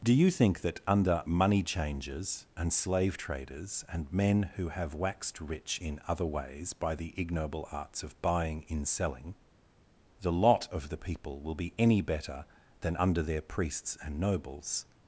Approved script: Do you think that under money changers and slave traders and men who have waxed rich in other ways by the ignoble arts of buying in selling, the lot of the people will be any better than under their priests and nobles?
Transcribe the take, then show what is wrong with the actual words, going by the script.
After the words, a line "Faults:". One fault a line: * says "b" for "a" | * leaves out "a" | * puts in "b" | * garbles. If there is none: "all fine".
Do you think that under money changers and slave traders and men who have waxed rich in other ways by the ignoble arts of buying in selling, the lot of the people will be any better than under their priests and nobles?
Faults:
all fine